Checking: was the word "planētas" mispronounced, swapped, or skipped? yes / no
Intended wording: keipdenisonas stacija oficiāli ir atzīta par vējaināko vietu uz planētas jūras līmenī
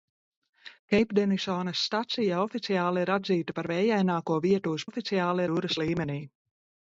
yes